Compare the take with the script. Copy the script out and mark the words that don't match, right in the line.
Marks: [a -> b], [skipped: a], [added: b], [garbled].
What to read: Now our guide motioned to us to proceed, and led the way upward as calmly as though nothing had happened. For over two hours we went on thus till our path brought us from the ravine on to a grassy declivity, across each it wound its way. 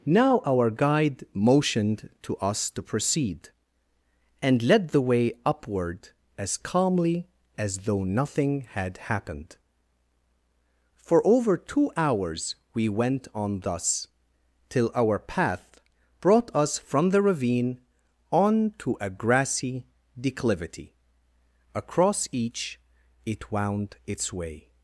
Now our guide motioned to us to proceed, and led the way upward as calmly as though nothing had happened. For over two hours we went on thus till our path brought us from the ravine on to a grassy declivity, across each it wound its way.